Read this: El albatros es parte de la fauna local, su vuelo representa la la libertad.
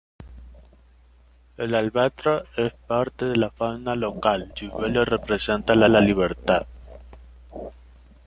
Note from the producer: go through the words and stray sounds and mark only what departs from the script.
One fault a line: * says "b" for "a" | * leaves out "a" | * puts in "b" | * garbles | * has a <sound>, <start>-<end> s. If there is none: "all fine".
all fine